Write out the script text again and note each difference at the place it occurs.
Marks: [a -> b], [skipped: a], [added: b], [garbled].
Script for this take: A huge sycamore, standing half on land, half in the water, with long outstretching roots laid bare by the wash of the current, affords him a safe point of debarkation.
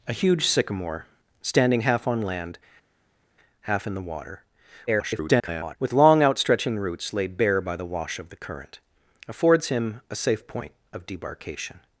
A huge sycamore, standing half on land, half in the water, [garbled] with long outstretching roots laid bare by the wash of the current, affords him a safe point of debarkation.